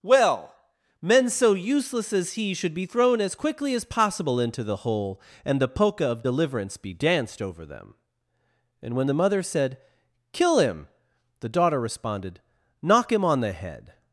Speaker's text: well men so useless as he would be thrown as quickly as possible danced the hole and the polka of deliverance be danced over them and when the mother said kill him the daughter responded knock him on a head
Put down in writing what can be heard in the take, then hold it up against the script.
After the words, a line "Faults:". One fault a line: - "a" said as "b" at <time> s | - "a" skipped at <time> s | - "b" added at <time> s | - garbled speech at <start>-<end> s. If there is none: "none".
well men so useless as he should be thrown as quickly as possible into the hole and the polka of deliverance be danced over them and when the mother said kill him the daughter responded knock him on the head
Faults:
- "would" said as "should" at 2.5 s
- "danced" said as "into" at 4.4 s
- "a" said as "the" at 13.4 s